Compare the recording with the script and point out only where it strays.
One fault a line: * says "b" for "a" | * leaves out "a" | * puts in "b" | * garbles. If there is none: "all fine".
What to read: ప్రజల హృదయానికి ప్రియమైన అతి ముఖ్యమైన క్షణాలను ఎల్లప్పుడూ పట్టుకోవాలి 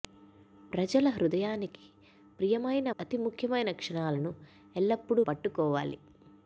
all fine